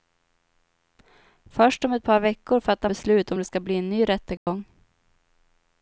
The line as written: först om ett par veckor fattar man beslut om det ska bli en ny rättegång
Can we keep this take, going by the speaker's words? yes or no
no